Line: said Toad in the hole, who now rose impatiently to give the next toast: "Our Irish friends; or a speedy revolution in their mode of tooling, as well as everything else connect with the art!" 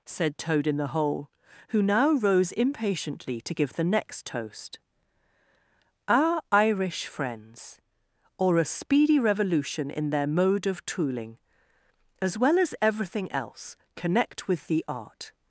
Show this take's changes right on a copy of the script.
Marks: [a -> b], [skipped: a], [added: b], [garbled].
said Toad in the hole, who now rose impatiently to give the next toast: "Our Irish friends; or a speedy revolution in their mode of tooling, as well as everything else connect with the art!"